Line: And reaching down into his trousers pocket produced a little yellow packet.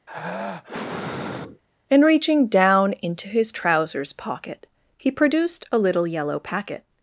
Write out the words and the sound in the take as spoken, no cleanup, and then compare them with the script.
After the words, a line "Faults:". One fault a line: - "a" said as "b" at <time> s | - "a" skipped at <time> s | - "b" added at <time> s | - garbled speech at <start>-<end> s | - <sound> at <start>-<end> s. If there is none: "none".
And reaching down into his trousers pocket he produced a little yellow packet.
Faults:
- sigh at 0.1-1.6 s
- "he" added at 5.0 s